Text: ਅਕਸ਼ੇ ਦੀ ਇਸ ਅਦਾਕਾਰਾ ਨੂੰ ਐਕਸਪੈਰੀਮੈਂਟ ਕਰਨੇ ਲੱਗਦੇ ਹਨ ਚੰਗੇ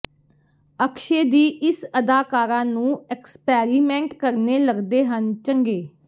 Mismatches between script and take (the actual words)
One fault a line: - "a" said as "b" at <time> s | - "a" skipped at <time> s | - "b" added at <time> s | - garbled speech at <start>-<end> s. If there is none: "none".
none